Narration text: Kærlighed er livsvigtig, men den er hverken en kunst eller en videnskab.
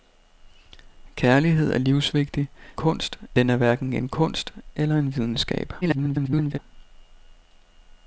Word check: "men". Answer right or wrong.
wrong